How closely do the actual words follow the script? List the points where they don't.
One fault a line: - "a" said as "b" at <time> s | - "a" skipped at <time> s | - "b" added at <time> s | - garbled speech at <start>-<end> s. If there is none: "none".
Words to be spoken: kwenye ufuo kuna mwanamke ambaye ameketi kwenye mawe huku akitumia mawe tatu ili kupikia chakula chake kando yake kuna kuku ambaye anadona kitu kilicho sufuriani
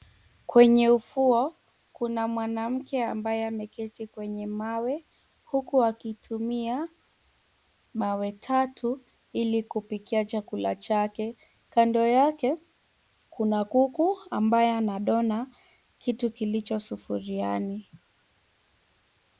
none